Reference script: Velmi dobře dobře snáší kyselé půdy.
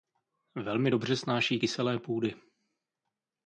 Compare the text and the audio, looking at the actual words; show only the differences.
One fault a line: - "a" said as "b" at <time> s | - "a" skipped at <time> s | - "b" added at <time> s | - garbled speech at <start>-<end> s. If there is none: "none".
- "dobře" skipped at 1.2 s